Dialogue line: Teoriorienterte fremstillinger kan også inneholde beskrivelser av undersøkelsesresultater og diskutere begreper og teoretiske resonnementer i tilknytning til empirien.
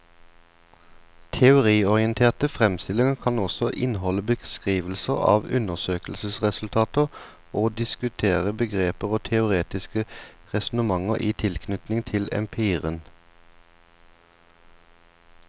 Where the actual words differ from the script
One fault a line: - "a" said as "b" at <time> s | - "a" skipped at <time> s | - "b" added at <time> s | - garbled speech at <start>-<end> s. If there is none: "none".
none